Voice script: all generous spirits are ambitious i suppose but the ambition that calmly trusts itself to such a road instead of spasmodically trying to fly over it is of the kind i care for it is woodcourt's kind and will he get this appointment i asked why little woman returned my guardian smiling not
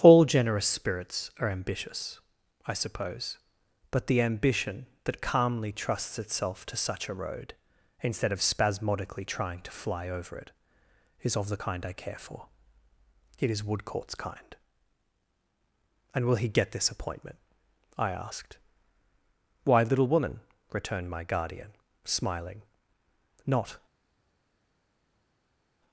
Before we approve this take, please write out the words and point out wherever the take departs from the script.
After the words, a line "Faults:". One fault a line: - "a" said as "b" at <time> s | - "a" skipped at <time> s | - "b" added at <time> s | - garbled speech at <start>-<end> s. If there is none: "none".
all generous spirits are ambitious i suppose but the ambition that calmly trusts itself to such a road instead of spasmodically trying to fly over it is of the kind i care for it is woodcourt's kind and will he get this appointment i asked why little woman returned my guardian smiling not
Faults:
none